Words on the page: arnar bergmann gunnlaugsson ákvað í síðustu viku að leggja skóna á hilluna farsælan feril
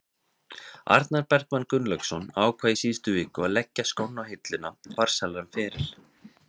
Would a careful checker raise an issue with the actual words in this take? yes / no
no